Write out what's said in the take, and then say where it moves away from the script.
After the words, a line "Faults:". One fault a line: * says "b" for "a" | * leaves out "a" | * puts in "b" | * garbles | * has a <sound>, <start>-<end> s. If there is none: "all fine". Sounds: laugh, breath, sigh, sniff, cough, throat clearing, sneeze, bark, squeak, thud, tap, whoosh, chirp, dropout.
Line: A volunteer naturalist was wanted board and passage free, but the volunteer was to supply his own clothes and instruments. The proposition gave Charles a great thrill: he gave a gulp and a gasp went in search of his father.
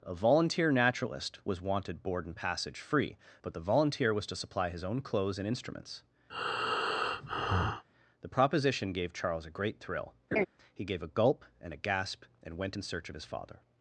A volunteer naturalist was wanted board and passage free, but the volunteer was to supply his own clothes and instruments. The proposition gave Charles a great thrill: he gave a gulp and a gasp and went in search of his father.
Faults:
* has a breath, 6.3-7.8 s
* has a laugh, 10.3-10.5 s
* puts in "and"